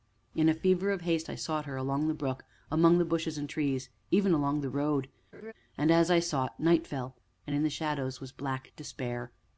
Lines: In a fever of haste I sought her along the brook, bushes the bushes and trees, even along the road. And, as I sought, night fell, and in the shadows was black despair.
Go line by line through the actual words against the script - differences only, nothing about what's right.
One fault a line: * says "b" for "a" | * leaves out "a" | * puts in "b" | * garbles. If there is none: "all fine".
* says "among" for "bushes"